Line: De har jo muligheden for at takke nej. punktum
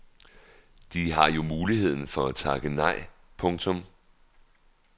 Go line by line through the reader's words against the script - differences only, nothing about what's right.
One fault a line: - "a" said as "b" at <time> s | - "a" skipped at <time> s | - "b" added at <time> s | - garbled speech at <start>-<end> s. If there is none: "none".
none